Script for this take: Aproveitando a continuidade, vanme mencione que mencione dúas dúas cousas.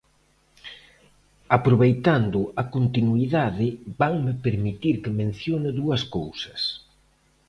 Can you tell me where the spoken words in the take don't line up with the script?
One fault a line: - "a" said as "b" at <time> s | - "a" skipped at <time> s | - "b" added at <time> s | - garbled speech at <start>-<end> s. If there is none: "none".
- "mencione" said as "permitir" at 4.5 s
- "dúas" skipped at 6.0 s